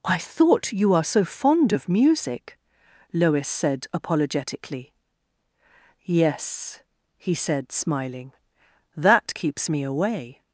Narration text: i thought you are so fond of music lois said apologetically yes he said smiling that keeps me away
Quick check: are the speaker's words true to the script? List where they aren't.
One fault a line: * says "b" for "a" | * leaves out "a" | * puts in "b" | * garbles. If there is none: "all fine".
all fine